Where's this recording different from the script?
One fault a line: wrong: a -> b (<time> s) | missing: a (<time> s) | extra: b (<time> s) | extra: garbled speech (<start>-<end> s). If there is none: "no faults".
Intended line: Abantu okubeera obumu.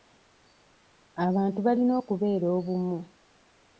extra: balina (1.6 s)